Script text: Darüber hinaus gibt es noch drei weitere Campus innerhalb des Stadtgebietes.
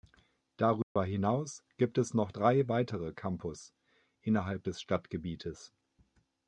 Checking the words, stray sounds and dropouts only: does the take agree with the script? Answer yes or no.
no